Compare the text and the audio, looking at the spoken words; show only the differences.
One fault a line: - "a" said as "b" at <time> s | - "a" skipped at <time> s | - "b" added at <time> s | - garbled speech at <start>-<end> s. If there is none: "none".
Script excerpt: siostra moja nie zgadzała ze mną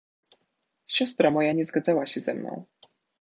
- "się" added at 2.1 s